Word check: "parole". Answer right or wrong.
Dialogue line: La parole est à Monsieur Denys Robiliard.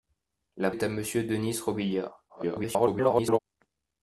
wrong